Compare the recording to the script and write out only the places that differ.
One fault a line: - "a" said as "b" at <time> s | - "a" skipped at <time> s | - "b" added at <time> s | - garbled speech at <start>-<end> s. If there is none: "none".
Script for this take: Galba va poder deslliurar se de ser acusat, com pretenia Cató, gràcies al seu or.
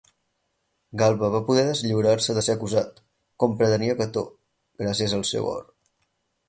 none